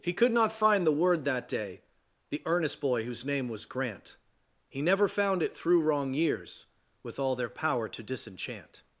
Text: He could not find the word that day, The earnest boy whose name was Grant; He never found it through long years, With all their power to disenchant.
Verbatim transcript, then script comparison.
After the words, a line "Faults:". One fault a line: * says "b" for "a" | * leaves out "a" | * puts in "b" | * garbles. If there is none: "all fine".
He could not find the word that day, The earnest boy whose name was Grant; He never found it through wrong years, With all their power to disenchant.
Faults:
* says "wrong" for "long"